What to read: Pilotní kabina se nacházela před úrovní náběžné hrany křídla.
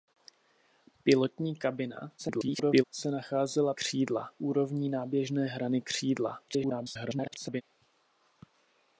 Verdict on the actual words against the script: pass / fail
fail